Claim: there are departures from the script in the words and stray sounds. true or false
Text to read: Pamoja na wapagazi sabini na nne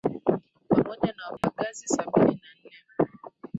true